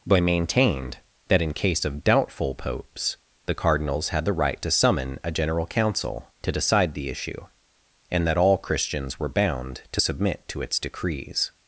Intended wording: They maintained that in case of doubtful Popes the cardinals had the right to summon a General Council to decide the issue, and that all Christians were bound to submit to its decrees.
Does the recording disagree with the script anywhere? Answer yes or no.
yes